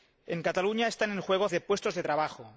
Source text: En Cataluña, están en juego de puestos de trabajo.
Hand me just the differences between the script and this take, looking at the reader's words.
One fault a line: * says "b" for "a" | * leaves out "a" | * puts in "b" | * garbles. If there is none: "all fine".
all fine